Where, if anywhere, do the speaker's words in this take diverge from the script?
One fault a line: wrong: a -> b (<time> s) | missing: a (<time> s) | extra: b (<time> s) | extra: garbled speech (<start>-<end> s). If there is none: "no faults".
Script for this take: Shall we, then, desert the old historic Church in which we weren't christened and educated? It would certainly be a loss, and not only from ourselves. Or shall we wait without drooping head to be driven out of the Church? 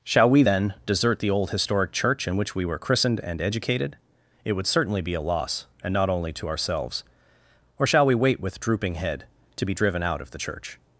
wrong: weren't -> were (2.6 s)
wrong: from -> to (6.3 s)
wrong: without -> with (8.4 s)